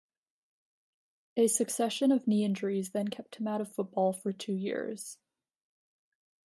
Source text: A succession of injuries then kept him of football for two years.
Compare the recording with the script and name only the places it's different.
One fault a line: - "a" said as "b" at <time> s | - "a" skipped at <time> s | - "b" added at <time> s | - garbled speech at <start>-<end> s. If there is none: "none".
- "knee" added at 2.2 s
- "out" added at 3.5 s